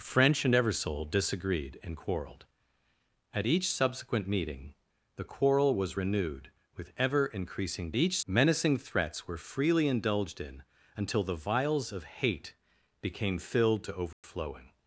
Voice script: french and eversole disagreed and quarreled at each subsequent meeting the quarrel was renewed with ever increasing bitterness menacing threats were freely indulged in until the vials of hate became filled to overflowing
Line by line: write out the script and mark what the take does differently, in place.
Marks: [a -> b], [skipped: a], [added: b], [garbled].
french and eversole disagreed and quarreled at each subsequent meeting the quarrel was renewed with ever increasing [bitterness -> each] menacing threats were freely indulged in until the vials of hate became filled to overflowing